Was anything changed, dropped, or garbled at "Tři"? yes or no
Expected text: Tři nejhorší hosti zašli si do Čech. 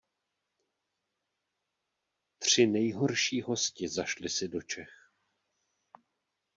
no